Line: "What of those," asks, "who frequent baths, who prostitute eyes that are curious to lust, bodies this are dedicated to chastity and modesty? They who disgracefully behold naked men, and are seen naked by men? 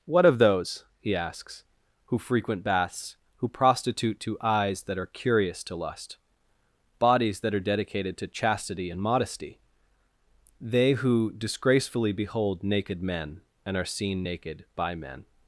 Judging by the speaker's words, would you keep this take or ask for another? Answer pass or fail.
fail